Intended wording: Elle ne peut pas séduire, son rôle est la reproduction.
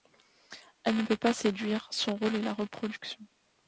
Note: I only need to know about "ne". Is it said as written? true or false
true